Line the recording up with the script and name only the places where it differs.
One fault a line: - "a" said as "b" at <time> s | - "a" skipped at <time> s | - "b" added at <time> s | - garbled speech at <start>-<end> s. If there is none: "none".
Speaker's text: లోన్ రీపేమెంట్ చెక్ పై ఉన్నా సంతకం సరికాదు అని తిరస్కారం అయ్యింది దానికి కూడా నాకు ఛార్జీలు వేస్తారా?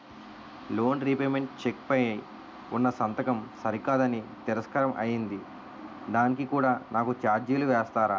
none